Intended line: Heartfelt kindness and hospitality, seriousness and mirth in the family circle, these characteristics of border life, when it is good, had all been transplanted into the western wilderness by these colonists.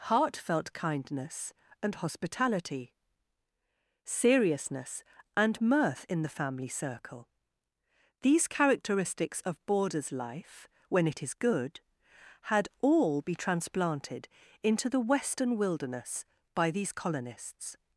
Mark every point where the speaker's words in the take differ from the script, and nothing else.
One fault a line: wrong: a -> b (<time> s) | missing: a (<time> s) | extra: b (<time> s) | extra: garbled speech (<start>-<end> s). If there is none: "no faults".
wrong: border -> borders (9.7 s)
wrong: been -> be (13.2 s)